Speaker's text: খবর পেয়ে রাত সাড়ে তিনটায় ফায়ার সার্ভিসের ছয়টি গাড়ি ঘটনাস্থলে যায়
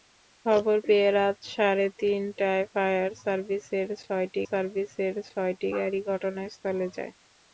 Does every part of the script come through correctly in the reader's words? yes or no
no